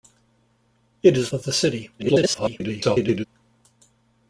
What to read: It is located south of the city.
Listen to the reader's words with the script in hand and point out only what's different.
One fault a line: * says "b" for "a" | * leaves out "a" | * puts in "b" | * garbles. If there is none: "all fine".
* leaves out "located south"
* garbles